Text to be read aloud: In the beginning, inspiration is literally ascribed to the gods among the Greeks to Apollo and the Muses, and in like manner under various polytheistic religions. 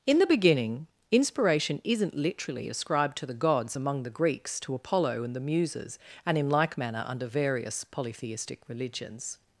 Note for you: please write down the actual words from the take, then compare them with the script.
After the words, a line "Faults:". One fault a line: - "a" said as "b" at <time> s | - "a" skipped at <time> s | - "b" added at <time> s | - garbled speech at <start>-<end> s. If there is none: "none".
In the beginning, inspiration isn't literally ascribed to the gods among the Greeks to Apollo and the Muses, and in like manner under various polytheistic religions.
Faults:
- "is" said as "isn't" at 1.8 s